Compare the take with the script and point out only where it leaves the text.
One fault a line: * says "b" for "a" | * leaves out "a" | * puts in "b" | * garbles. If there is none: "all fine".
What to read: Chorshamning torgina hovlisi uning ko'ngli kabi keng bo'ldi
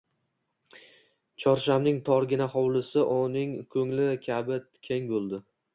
all fine